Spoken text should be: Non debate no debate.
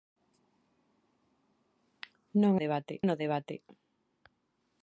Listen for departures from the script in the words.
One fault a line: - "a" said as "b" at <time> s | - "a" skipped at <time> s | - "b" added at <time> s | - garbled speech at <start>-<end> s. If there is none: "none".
none